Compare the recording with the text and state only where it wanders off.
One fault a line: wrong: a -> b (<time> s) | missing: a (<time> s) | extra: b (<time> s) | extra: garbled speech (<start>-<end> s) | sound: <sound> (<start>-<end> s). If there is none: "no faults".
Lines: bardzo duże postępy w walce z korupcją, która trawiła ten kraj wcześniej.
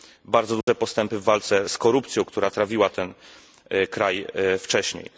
sound: dropout (0.6-0.7 s)